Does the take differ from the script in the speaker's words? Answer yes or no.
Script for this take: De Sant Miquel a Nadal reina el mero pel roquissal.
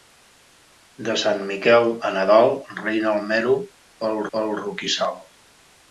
yes